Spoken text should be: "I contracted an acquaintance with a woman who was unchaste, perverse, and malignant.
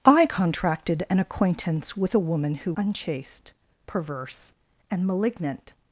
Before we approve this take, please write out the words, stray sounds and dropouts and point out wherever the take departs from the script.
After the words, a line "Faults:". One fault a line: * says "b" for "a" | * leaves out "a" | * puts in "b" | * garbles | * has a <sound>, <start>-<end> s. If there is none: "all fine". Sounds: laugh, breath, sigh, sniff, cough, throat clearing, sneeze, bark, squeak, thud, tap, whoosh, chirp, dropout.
"I contracted an acquaintance with a woman who unchaste, perverse, and malignant.
Faults:
* leaves out "was"